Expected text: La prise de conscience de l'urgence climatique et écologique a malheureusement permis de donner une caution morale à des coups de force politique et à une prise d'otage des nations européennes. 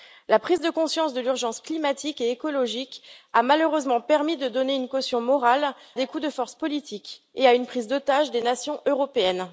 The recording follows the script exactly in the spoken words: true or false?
false